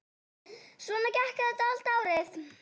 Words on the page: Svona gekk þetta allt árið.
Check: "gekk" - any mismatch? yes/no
no